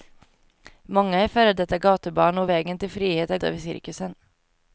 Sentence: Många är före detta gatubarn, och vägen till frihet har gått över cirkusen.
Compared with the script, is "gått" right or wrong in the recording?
wrong